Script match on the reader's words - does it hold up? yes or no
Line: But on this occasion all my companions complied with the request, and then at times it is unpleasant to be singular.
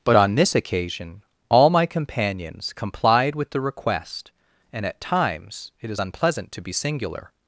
no